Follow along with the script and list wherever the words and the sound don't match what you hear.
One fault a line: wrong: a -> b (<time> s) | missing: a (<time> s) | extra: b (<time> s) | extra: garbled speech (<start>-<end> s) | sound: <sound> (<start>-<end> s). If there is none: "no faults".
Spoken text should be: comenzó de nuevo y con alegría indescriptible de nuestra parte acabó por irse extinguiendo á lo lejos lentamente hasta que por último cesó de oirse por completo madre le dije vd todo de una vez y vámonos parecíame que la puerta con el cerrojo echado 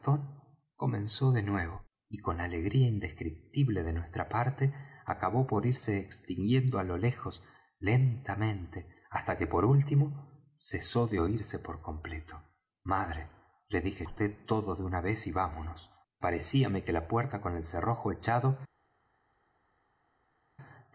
no faults